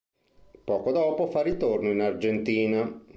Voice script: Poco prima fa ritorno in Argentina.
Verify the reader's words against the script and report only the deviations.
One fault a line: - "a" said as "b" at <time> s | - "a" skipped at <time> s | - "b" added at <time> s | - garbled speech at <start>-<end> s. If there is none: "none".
- "prima" said as "dopo" at 0.9 s